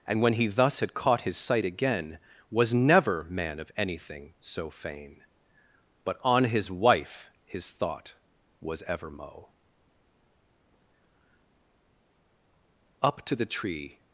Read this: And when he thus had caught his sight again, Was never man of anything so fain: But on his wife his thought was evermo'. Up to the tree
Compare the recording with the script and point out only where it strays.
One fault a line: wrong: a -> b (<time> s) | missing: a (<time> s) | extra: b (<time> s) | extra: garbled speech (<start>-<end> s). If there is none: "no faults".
no faults